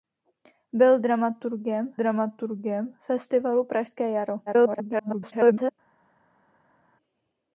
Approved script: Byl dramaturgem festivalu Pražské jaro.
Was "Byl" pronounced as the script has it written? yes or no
yes